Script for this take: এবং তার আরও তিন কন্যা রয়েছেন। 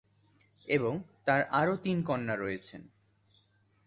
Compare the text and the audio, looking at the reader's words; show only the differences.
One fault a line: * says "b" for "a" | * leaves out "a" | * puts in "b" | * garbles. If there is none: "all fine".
all fine